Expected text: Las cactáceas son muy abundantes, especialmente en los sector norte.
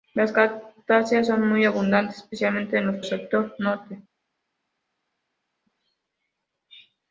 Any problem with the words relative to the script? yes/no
no